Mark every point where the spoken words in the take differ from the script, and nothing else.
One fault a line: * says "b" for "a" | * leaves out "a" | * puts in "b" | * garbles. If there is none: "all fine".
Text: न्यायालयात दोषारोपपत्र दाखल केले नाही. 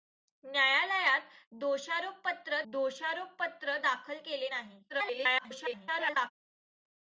* puts in "दोषारोपपत्र"
* garbles